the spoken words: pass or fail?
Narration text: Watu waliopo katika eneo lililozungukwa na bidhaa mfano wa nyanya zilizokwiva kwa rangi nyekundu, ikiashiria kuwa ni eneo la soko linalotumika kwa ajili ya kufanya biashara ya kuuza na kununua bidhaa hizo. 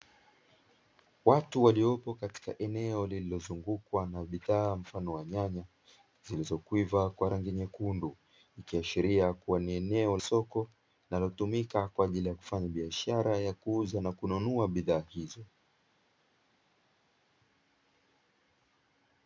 fail